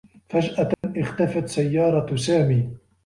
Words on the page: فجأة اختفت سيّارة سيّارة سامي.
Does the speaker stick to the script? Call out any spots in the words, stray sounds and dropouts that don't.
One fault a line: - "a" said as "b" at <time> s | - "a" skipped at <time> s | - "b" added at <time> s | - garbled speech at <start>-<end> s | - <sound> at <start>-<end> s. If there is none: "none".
- dropout at 0.7-0.8 s
- "سيّارة" skipped at 2.1 s